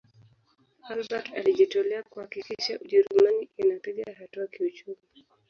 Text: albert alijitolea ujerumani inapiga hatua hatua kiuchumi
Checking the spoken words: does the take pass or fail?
fail